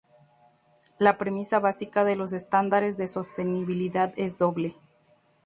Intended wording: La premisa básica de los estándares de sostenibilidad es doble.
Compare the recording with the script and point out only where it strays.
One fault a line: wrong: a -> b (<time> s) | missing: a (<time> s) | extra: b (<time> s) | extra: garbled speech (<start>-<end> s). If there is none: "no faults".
no faults